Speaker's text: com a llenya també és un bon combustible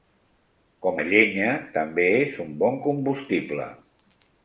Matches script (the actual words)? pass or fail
pass